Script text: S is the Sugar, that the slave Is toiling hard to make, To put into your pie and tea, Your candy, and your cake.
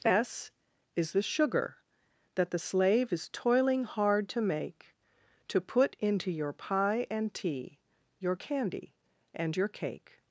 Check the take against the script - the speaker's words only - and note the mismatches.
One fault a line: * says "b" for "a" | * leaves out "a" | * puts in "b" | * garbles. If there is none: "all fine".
all fine